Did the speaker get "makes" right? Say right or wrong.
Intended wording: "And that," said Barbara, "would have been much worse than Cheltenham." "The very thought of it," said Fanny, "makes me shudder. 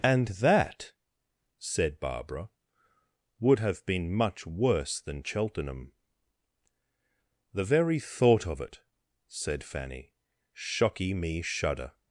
wrong